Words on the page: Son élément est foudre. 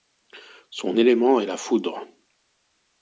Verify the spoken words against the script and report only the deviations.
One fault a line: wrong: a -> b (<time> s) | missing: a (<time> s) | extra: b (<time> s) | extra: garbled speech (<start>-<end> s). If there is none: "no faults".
extra: la (1.5 s)